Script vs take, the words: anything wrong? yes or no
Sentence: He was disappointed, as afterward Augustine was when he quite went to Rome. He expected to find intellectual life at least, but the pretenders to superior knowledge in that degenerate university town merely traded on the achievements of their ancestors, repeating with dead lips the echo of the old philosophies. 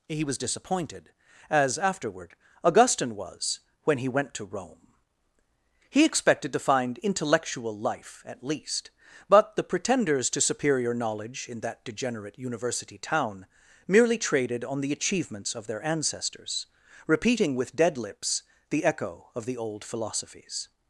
yes